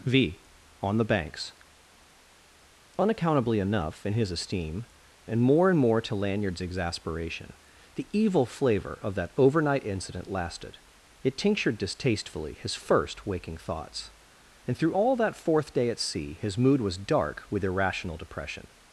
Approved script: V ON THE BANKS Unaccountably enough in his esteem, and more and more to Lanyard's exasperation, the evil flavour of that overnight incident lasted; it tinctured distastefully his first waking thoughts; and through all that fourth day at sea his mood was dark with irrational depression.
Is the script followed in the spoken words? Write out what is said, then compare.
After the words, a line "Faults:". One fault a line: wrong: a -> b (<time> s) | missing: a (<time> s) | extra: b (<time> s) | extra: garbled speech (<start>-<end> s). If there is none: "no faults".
V ON THE BANKS Unaccountably enough in his esteem, and more and more to Lanyard's exasperation, the evil flavour of that overnight incident lasted; it tinctured distastefully his first waking thoughts; and through all that fourth day at sea his mood was dark with irrational depression.
Faults:
no faults